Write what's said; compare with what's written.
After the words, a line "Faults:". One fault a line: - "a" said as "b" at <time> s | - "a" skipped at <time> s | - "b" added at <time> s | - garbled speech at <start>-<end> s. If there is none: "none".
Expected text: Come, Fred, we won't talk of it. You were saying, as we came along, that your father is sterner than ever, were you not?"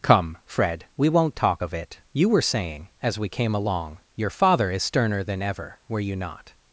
Come, Fred, we won't talk of it. You were saying, as we came along, your father is sterner than ever, were you not?"
Faults:
- "that" skipped at 4.0 s